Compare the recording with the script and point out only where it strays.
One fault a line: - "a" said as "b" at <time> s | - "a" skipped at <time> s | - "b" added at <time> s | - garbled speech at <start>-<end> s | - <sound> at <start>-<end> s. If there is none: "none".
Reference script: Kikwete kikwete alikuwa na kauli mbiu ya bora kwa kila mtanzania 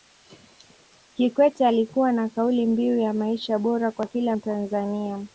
- "kikwete" skipped at 1.7 s
- "maisha" added at 3.1 s